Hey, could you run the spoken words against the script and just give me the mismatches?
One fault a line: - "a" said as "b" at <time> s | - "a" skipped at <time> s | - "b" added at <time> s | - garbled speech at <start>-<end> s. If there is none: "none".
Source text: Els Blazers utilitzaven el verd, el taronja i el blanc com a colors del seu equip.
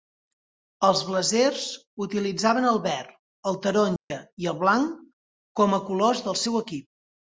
none